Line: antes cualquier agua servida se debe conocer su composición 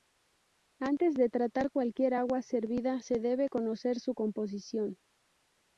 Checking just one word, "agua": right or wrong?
right